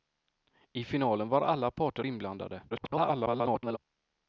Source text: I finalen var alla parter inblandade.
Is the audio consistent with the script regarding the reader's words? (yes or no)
no